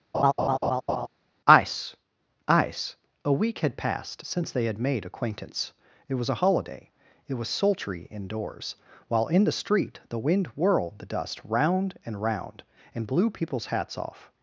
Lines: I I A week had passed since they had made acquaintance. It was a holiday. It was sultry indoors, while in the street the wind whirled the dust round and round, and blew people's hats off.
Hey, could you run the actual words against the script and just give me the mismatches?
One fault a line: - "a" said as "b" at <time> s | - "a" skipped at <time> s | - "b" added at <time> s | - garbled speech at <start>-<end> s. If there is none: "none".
- "I I" said as "ice ice" at 1.5 s